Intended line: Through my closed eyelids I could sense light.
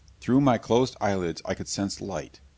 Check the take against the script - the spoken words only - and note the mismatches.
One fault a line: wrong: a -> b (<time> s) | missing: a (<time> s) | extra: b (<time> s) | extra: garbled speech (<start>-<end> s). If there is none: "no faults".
no faults